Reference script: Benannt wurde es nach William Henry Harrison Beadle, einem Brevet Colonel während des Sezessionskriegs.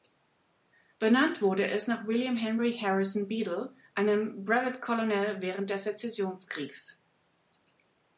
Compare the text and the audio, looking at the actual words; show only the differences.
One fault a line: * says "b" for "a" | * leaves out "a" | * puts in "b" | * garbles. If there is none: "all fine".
all fine